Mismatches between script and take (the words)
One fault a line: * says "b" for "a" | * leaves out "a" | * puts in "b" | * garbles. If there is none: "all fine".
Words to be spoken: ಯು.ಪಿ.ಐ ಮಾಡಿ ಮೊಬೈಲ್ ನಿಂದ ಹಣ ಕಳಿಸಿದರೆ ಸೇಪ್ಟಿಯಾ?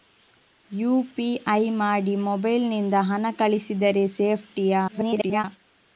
* garbles